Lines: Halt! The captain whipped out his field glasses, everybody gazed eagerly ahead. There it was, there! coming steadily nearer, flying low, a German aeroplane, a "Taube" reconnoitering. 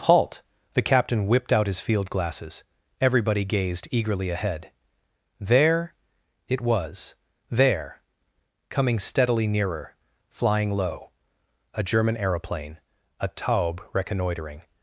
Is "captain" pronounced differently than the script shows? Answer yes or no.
no